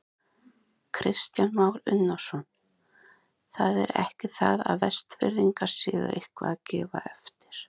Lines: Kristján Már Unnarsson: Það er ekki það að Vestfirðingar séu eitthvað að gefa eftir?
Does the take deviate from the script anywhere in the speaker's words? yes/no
no